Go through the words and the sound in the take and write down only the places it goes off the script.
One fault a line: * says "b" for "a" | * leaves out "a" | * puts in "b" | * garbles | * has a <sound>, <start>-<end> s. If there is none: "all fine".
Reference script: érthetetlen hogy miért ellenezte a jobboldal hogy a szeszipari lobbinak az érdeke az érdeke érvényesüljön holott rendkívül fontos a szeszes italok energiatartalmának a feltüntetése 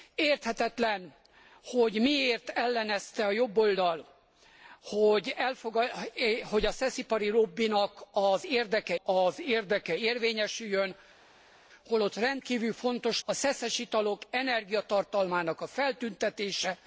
all fine